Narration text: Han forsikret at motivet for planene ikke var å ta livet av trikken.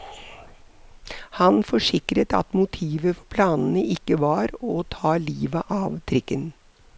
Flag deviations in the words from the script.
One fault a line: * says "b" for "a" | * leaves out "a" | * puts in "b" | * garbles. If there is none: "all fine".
all fine